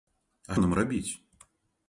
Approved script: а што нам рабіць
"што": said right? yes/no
no